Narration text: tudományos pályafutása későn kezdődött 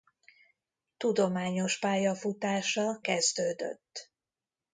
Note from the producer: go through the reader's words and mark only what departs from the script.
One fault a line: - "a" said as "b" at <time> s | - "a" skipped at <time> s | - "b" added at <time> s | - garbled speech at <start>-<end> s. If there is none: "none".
- "későn" skipped at 3.0 s